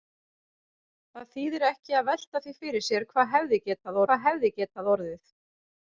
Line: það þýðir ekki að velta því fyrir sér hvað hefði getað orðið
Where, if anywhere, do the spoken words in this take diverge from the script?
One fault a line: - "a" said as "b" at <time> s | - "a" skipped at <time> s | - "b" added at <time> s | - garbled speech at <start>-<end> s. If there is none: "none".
- "hvað hefði getað" added at 4.1 s